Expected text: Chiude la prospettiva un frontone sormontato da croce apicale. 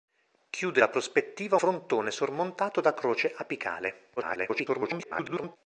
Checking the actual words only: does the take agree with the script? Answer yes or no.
no